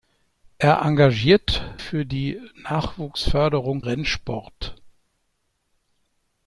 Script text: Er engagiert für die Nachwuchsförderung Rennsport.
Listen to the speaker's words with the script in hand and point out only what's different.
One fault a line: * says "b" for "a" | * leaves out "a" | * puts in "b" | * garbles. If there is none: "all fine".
all fine